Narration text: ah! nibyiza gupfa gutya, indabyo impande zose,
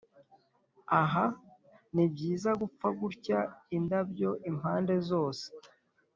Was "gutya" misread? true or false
false